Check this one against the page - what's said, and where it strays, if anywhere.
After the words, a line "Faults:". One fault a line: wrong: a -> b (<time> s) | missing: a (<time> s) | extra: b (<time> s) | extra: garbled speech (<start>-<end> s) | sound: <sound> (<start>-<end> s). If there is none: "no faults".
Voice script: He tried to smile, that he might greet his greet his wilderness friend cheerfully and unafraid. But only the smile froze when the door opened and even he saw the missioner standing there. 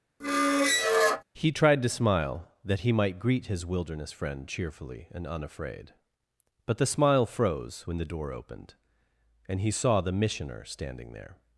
He tried to smile, that he might greet his wilderness friend cheerfully and unafraid. But the smile froze when the door opened and he saw the missioner standing there.
Faults:
sound: squeak (0.2-1.2 s)
missing: greet his (3.7 s)
missing: only (6.8 s)
missing: even (9.6 s)